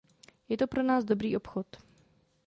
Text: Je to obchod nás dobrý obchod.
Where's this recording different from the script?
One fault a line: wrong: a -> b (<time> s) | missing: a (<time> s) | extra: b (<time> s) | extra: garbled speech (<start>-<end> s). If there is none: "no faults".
wrong: obchod -> pro (0.7 s)